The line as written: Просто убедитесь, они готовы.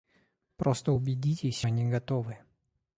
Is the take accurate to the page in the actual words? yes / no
yes